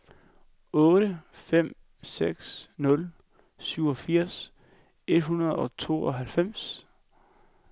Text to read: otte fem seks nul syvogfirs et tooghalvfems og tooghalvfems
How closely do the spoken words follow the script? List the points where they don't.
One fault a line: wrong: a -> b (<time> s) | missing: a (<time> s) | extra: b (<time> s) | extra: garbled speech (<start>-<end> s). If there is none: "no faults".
wrong: tooghalvfems -> hundrede (5.2 s)